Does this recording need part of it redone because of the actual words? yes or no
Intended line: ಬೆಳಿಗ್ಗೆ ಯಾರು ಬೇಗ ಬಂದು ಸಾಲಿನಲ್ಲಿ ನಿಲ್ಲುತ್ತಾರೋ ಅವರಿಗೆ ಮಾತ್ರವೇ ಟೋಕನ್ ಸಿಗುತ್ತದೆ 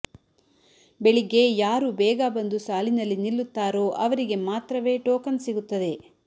no